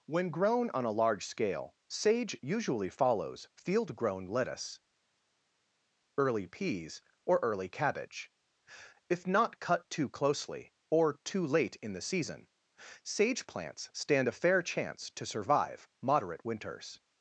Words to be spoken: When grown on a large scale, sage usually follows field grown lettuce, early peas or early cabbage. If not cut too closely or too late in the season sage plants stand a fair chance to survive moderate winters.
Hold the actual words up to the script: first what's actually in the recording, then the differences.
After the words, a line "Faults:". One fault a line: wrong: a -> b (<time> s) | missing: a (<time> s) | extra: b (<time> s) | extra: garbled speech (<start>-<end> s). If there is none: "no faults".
When grown on a large scale, sage usually follows field grown lettuce, early peas or early cabbage. If not cut too closely or too late in the season sage plants stand a fair chance to survive moderate winters.
Faults:
no faults